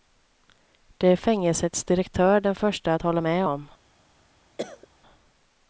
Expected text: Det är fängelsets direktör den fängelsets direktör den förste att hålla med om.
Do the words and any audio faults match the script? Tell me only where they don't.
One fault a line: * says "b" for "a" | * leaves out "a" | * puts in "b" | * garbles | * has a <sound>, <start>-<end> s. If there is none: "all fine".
* leaves out "fängelsets direktör den"
* has a cough, 4.6-4.9 s